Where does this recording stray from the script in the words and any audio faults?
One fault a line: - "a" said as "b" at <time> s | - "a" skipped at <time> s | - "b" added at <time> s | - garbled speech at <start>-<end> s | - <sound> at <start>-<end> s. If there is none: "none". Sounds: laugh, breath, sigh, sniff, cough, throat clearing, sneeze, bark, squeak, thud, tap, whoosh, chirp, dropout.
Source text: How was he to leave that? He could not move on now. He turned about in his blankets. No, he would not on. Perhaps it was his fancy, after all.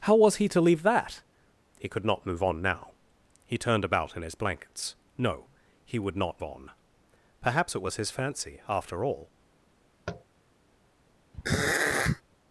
- tap at 10.1-10.2 s
- throat clearing at 11.3-12.2 s